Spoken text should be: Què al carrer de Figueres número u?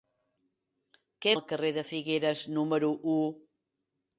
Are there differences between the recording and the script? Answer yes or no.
no